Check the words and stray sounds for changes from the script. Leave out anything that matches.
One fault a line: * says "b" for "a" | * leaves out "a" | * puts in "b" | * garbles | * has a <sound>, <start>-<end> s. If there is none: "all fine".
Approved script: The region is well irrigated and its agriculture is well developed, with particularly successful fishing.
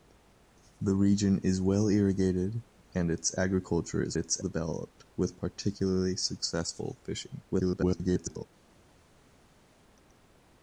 * says "its" for "well"
* garbles